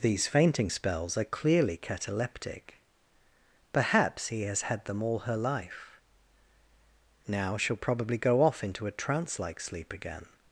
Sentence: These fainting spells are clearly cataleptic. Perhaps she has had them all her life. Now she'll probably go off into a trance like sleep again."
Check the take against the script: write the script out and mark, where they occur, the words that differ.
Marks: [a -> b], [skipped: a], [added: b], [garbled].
These fainting spells are clearly cataleptic. Perhaps [she -> he] has had them all her life. Now she'll probably go off into a trance like sleep again."